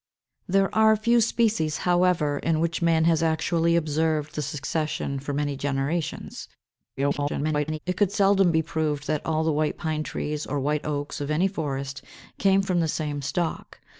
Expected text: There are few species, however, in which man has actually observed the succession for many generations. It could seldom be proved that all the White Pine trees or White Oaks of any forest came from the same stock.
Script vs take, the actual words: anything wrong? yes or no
yes